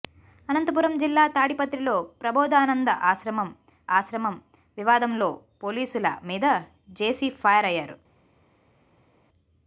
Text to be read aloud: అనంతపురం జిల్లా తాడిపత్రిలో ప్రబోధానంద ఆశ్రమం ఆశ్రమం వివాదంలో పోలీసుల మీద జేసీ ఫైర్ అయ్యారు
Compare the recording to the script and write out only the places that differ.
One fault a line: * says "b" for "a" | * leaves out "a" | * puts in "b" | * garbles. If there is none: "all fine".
all fine